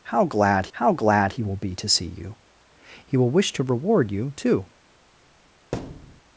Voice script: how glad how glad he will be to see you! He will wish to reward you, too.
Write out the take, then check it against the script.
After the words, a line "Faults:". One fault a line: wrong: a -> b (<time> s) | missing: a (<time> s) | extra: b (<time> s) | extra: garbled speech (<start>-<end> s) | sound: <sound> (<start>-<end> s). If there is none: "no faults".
how glad how glad he will be to see you! He will wish to reward you, too.
Faults:
sound: thud (5.7-6.2 s)